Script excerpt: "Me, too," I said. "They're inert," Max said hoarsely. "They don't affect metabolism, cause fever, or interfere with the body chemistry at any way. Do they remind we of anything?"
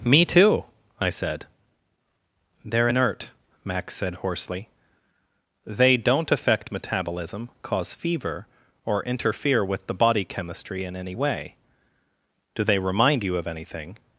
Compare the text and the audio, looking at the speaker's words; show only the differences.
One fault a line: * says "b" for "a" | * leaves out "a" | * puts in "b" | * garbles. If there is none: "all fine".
* says "in" for "at"
* says "you" for "we"